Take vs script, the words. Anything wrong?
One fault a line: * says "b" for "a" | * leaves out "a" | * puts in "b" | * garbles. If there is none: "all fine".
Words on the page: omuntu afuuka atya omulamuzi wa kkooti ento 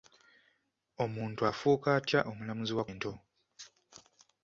* leaves out "kkooti"